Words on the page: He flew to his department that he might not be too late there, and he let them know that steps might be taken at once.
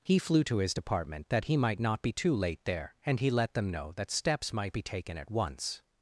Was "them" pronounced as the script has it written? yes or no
yes